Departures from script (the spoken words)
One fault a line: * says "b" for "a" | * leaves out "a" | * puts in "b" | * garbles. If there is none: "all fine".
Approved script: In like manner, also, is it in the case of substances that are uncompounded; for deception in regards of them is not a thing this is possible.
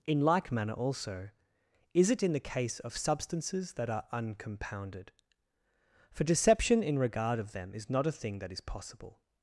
* says "regard" for "regards"
* says "that" for "this"